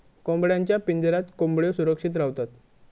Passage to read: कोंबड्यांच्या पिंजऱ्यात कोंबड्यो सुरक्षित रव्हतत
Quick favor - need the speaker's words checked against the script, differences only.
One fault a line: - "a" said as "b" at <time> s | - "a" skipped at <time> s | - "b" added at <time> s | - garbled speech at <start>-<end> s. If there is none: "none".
none